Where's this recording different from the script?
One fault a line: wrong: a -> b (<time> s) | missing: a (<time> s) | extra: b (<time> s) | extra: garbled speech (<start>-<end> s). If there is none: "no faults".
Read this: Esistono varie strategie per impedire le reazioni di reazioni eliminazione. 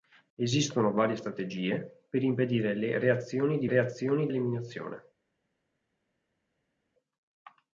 no faults